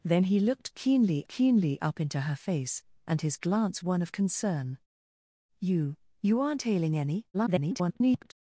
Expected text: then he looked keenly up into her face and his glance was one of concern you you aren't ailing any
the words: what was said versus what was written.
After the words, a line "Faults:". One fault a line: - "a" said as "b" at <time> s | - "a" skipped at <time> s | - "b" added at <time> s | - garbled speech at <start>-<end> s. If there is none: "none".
then he looked keenly keenly up into her face and his glance one of concern you you aren't ailing any [garbled]
Faults:
- "keenly" added at 1.3 s
- "was" skipped at 3.8 s
- garbled speech at 7.3-8.3 s